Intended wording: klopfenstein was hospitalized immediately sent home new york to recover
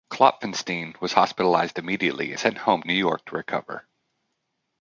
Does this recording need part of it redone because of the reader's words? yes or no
no